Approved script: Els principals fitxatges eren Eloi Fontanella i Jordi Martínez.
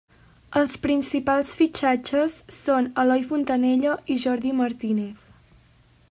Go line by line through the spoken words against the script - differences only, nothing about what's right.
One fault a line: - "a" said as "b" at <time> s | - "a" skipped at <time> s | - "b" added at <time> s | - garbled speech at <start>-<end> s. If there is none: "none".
- "eren" said as "són" at 2.6 s